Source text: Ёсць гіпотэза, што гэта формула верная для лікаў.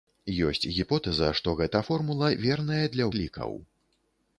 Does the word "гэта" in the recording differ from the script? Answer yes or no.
no